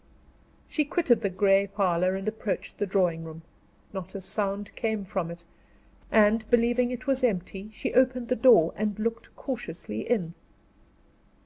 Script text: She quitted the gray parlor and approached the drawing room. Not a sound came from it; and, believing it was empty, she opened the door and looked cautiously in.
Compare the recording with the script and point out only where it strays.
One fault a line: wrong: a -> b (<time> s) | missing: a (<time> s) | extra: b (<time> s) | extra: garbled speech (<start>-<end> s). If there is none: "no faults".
no faults